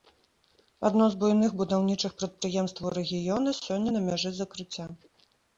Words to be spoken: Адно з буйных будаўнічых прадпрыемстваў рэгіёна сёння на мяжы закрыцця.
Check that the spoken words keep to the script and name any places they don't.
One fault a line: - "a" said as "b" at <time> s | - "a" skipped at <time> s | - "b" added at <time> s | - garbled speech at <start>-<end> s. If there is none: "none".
none